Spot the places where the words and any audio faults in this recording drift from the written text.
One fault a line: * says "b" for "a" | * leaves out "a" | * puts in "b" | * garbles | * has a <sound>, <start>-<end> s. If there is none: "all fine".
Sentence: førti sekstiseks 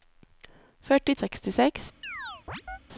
* has a chirp, 2.0-2.8 s